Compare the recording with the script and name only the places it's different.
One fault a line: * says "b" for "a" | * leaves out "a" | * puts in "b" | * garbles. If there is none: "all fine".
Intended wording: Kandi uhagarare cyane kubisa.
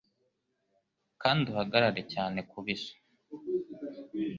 all fine